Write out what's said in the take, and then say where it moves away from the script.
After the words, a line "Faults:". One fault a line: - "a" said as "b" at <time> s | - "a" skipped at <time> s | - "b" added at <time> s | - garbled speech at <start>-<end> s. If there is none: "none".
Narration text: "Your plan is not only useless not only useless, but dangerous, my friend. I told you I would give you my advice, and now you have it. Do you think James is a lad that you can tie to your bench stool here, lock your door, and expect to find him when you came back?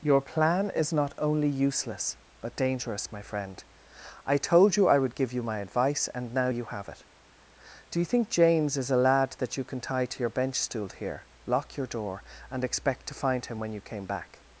"Your plan is not only useless, but dangerous, my friend. I told you I would give you my advice, and now you have it. Do you think James is a lad that you can tie to your bench stool here, lock your door, and expect to find him when you came back?
Faults:
- "not only useless" skipped at 2.2 s